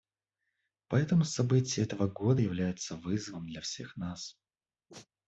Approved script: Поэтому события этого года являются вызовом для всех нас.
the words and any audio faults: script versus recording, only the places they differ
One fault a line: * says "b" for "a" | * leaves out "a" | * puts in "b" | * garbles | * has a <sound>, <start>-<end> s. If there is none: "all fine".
* has a sneeze, 4.9-5.1 s